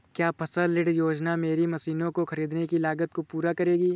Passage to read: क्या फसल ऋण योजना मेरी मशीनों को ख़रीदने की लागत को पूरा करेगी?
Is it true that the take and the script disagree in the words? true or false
false